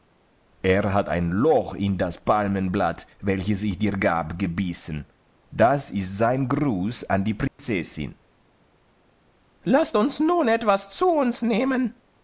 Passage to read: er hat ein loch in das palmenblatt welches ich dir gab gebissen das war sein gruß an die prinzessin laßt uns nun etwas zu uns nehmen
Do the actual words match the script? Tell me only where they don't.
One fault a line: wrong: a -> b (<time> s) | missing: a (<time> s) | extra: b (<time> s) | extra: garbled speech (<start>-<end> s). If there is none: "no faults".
wrong: war -> ist (5.9 s)